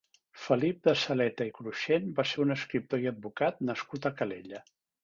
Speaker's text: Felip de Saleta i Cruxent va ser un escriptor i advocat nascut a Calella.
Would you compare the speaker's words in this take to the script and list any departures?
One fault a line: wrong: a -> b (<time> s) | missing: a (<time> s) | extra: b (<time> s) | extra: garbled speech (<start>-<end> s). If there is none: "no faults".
no faults